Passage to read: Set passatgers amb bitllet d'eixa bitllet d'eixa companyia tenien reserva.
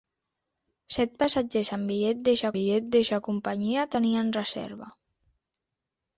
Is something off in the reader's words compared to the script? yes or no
no